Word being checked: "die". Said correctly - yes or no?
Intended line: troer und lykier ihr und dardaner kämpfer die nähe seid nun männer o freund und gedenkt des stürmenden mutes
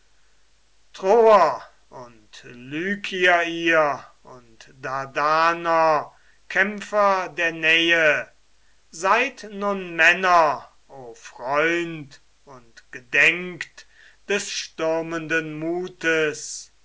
no